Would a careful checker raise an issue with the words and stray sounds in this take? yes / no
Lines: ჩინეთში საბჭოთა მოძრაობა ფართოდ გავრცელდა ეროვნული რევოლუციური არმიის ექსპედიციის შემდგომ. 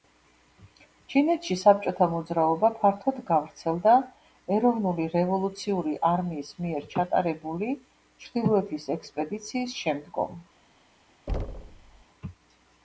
yes